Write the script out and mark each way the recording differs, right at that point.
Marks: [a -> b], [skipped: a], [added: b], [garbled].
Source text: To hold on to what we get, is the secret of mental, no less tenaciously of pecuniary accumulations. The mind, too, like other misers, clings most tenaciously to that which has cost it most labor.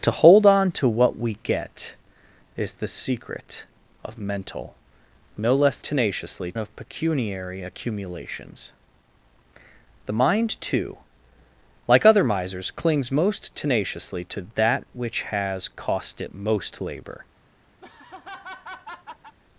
To hold on to what we get, is the secret of mental, no less tenaciously of pecuniary accumulations. The mind, too, like other misers, clings most tenaciously to that which has cost it most labor.